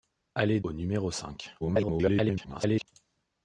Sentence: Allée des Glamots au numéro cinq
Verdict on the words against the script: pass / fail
fail